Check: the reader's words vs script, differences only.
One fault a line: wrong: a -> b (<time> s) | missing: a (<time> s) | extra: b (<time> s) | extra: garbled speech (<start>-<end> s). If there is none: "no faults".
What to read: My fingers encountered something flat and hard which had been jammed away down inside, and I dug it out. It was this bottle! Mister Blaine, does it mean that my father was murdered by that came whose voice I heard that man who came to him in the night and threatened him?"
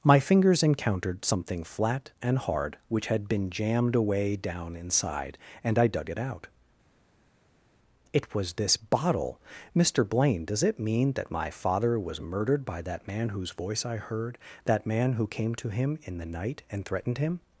wrong: came -> man (13.1 s)